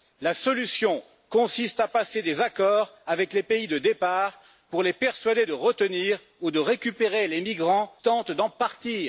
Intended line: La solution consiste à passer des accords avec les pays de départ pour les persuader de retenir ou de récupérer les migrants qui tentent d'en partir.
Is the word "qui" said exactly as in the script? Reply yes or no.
no